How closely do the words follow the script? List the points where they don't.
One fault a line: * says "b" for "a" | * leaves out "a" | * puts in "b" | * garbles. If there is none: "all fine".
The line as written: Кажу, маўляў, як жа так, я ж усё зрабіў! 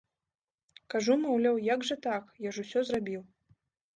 all fine